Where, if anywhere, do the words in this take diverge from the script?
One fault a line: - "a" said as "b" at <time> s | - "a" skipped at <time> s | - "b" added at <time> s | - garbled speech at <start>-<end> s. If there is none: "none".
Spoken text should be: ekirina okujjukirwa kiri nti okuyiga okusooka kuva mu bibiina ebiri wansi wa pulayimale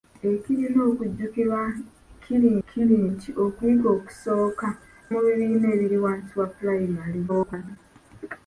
- "kiri" added at 2.7 s
- "kuva" skipped at 4.7 s
- garbled speech at 7.3-7.8 s